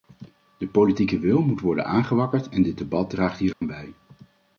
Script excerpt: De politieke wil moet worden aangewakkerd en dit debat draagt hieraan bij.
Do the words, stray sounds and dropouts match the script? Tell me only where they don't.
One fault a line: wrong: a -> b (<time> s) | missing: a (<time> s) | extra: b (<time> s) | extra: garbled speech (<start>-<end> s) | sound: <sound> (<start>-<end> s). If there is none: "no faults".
sound: dropout (3.5-3.6 s)